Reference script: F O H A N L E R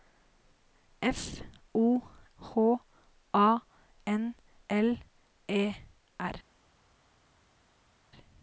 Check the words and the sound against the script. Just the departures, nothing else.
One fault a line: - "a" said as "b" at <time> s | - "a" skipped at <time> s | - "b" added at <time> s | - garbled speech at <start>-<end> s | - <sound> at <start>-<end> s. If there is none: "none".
none